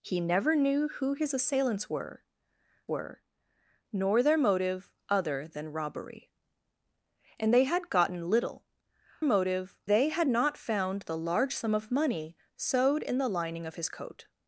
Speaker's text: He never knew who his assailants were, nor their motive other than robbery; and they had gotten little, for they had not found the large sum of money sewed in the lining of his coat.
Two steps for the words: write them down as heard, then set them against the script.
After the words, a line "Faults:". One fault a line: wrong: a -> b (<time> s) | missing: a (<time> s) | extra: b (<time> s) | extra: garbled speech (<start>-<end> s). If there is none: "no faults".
He never knew who his assailants were were, nor their motive other than robbery; and they had gotten little, motive they had not found the large sum of money sewed in the lining of his coat.
Faults:
extra: were (2.9 s)
wrong: for -> motive (9.2 s)